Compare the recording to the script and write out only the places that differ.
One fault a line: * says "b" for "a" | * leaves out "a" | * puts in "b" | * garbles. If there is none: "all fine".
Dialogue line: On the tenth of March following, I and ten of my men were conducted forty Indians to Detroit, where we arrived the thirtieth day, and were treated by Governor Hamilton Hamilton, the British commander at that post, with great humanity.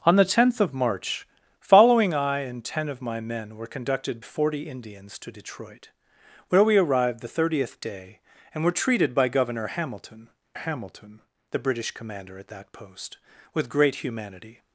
all fine